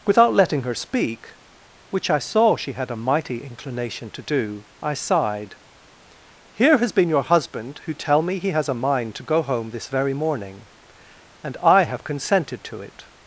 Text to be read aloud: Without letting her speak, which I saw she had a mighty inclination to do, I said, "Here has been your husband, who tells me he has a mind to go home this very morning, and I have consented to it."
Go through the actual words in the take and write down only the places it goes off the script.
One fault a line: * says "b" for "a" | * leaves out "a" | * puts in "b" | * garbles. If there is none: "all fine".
* says "sighed" for "said"
* says "tell" for "tells"